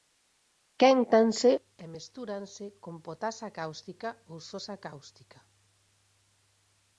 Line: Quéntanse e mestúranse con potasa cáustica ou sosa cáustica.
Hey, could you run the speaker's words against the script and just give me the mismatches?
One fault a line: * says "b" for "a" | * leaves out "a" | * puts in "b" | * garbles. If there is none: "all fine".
all fine